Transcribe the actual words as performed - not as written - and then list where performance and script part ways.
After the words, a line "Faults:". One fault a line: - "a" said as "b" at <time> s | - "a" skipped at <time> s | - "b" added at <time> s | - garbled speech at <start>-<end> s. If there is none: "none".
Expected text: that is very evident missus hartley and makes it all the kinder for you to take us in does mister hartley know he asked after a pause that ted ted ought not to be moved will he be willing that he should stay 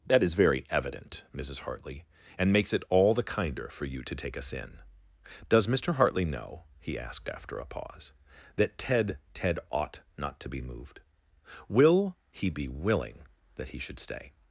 that is very evident missus hartley and makes it all the kinder for you to take us in does mister hartley know he asked after a pause that ted ted ought not to be moved will he be willing that he should stay
Faults:
none